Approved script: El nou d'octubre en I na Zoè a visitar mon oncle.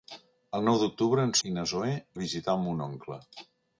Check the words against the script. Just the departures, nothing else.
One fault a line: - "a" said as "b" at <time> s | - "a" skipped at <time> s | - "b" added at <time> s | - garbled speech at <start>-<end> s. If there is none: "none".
none